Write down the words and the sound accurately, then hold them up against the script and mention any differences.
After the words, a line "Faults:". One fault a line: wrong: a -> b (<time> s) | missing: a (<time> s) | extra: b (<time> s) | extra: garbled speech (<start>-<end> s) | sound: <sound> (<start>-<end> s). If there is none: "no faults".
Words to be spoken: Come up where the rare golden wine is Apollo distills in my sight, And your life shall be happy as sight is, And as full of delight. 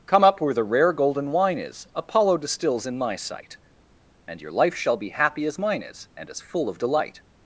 Come up where the rare golden wine is Apollo distills in my sight, And your life shall be happy as mine is, And as full of delight.
Faults:
wrong: sight -> mine (5.6 s)